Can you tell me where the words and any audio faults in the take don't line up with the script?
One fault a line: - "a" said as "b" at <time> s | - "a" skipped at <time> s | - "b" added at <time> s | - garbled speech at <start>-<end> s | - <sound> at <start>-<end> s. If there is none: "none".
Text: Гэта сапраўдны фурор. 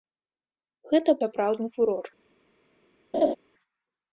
- laugh at 3.1-3.4 s